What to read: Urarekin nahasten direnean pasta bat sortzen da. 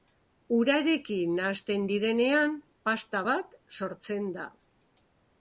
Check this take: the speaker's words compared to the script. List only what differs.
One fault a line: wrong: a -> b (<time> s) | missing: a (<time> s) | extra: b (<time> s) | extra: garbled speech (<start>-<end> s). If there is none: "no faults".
no faults